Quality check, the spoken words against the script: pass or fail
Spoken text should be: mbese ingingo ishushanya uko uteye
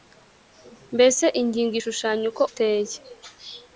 pass